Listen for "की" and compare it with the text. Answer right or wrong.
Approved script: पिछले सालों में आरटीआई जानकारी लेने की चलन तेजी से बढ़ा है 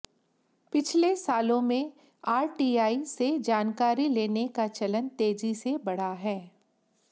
wrong